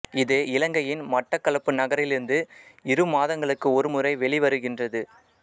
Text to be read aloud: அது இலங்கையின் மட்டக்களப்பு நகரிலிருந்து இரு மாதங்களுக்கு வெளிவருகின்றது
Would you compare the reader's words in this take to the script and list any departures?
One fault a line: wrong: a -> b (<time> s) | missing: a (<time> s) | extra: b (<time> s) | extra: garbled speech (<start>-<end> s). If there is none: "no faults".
wrong: அது -> இது (0.2 s)
extra: ஒரு முறை (3.8 s)